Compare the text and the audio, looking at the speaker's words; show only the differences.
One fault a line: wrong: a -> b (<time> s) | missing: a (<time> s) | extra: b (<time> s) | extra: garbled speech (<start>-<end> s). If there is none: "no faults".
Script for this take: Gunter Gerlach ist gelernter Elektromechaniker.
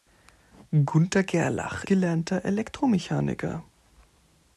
missing: ist (1.8 s)